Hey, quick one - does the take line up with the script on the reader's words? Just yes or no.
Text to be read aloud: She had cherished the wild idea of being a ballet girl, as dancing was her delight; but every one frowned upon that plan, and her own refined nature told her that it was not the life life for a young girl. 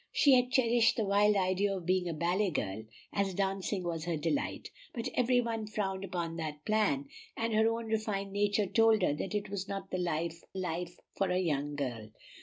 yes